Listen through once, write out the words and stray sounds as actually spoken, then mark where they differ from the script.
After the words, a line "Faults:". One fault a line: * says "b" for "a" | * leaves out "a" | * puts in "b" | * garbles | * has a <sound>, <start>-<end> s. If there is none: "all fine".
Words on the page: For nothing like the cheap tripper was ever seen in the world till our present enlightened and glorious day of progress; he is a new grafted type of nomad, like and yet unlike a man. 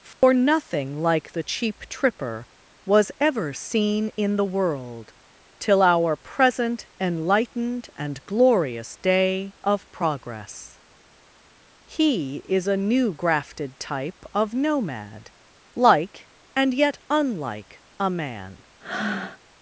For nothing like the cheap tripper was ever seen in the world till our present enlightened and glorious day of progress; he is a new grafted type of nomad, like and yet unlike a man.
Faults:
* has a dropout, 0.1-0.2 s
* has a breath, 18.8-19.4 s